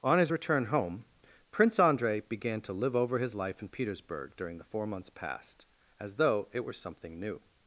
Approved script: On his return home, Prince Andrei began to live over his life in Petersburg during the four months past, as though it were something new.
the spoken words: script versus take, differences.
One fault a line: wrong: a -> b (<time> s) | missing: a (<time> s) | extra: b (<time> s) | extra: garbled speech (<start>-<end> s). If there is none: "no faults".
no faults